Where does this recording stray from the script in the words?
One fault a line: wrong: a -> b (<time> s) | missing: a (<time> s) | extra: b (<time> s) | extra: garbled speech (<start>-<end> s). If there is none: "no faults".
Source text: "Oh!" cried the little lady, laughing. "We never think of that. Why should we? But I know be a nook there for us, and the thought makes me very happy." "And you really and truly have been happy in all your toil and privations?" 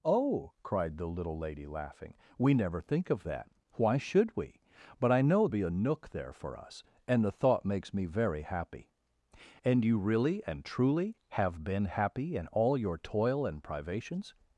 no faults